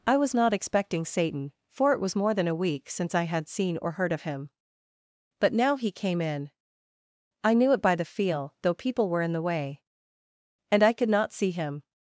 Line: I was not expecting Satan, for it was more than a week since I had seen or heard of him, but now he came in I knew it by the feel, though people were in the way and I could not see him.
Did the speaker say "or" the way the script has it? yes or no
yes